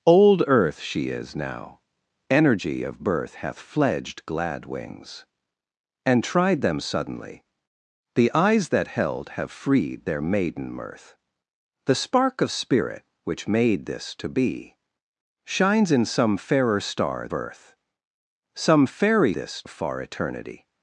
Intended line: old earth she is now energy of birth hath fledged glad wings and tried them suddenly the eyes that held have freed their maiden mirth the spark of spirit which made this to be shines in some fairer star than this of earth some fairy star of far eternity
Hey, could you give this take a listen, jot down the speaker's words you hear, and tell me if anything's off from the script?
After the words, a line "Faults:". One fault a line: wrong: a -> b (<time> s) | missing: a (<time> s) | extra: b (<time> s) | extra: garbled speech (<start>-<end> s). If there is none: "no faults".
old earth she is now energy of birth hath fledged glad wings and tried them suddenly the eyes that held have freed their maiden mirth the spark of spirit which made this to be shines in some fairer star earth some fairy this of far eternity
Faults:
missing: than this of (17.3 s)
wrong: star -> this (19.3 s)